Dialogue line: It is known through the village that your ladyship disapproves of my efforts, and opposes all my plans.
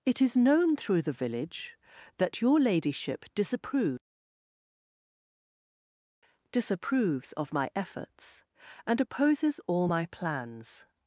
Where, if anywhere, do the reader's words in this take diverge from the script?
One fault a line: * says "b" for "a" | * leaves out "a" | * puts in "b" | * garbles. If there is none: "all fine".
* puts in "disapproves"